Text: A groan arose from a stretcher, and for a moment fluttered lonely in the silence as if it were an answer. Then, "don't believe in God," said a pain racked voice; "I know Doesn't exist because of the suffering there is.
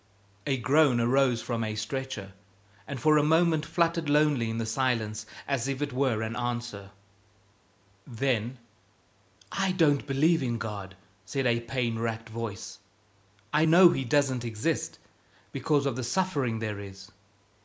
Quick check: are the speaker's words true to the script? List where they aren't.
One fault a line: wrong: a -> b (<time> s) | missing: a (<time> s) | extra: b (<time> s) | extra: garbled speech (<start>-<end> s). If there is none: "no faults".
extra: I (9.5 s)
extra: He (13.9 s)